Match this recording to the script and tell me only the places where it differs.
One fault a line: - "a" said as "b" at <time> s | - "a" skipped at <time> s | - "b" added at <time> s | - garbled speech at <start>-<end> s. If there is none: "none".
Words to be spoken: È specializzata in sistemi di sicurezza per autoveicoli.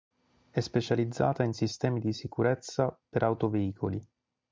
none